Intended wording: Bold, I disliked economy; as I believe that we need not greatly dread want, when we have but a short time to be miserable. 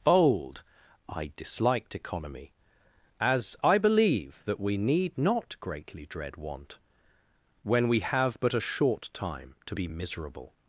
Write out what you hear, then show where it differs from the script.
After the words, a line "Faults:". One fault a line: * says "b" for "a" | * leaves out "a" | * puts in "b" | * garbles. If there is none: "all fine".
Bold, I disliked economy; as I believe that we need not greatly dread want, when we have but a short time to be miserable.
Faults:
all fine